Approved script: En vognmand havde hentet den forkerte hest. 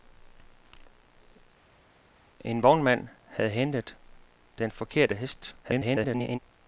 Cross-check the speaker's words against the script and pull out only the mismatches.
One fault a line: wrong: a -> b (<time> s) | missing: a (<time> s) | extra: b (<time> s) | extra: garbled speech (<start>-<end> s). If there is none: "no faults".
extra: garbled speech (5.6-6.4 s)